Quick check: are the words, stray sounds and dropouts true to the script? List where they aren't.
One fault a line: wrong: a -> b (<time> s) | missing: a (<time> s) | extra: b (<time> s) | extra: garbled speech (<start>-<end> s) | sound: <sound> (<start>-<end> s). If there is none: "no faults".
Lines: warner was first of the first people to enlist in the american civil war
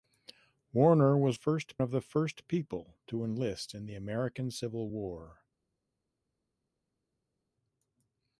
no faults